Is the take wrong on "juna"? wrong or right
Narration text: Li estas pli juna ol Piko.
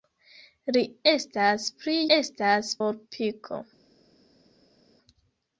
wrong